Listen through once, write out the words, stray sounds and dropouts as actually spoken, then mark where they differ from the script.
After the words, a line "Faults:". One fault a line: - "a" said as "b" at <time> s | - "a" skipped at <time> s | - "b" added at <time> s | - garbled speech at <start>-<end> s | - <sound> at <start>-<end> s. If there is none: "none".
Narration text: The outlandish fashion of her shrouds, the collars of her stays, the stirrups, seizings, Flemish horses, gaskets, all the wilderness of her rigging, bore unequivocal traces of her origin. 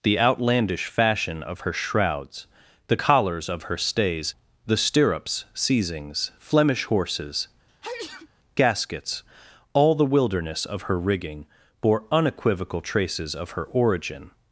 The outlandish fashion of her shrouds, the collars of her stays, the stirrups, seizings, Flemish horses, gaskets, all the wilderness of her rigging, bore unequivocal traces of her origin.
Faults:
- sneeze at 7.7-8.3 s